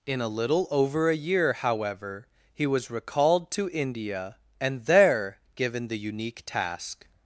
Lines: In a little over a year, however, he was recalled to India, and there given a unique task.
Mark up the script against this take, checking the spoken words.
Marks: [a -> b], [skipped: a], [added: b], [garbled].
In a little over a year, however, he was recalled to India, and there given [a -> the] unique task.